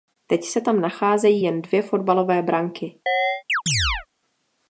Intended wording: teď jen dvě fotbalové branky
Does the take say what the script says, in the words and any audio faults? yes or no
no